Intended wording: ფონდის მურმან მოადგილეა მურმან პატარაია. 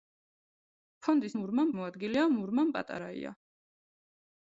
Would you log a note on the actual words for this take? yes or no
no